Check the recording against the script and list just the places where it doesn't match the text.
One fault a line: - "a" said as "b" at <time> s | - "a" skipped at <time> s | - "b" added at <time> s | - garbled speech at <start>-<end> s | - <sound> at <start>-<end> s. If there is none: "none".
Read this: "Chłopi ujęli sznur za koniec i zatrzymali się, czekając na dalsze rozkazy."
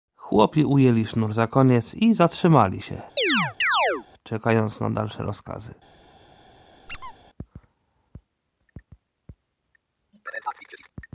- chirp at 3.2-4.1 s
- squeak at 6.9-7.1 s